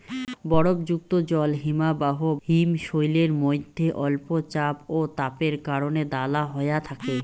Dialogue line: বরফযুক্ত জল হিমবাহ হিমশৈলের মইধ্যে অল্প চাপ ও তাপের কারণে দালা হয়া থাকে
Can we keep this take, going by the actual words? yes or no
yes